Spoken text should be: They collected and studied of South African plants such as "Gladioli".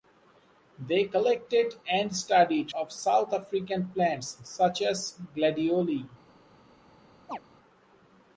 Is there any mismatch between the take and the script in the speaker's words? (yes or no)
no